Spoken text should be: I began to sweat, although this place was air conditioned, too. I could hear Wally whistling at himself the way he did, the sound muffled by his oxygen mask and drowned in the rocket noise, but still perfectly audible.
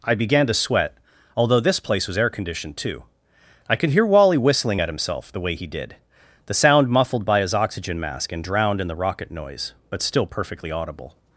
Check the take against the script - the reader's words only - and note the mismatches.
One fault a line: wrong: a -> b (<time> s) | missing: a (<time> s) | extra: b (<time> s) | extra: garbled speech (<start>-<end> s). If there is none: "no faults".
no faults